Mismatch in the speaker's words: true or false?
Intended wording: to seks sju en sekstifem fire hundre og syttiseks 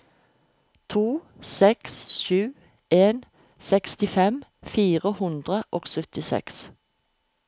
false